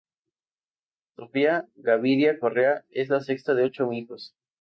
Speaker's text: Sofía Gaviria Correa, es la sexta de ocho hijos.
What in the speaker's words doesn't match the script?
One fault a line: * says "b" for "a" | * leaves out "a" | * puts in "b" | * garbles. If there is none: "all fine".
all fine